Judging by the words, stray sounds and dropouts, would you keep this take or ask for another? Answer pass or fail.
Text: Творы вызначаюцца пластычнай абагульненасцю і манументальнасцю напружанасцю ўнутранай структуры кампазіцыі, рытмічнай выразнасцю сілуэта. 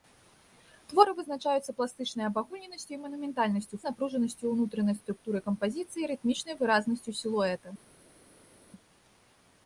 pass